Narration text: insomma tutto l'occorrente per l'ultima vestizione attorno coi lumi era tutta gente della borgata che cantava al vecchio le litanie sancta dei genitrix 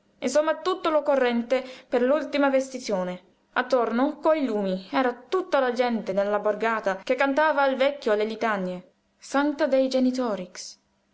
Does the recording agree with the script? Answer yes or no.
no